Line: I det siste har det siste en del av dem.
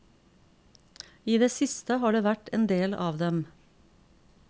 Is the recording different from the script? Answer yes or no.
yes